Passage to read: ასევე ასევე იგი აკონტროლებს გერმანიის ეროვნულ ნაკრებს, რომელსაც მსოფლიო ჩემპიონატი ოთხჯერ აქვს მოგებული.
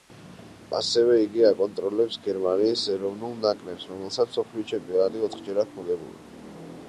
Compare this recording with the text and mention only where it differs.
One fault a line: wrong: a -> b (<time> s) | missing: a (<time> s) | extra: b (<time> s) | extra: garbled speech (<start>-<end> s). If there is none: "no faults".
missing: ასევე (1.2 s)